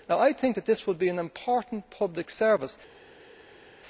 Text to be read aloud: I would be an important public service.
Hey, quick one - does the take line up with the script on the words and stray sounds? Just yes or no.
no